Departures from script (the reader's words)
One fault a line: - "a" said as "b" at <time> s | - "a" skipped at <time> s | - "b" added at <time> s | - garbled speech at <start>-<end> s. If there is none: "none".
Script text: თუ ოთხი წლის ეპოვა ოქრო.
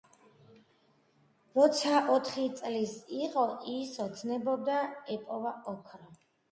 - "თუ" said as "როცა" at 1.6 s
- "იყო ის ოცნებობდა" added at 3.2 s